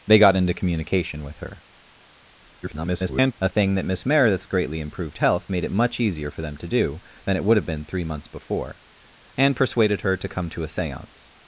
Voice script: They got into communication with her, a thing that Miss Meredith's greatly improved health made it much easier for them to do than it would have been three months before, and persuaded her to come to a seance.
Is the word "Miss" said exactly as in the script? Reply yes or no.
yes